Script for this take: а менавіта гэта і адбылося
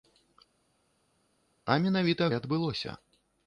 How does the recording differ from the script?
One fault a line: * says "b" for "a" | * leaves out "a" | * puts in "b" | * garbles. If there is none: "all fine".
* leaves out "гэта"